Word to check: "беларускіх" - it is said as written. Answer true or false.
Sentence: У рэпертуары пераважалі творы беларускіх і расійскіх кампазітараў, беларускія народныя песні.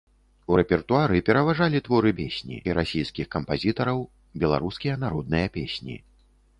false